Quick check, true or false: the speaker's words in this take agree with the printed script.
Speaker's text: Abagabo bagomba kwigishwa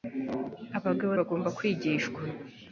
true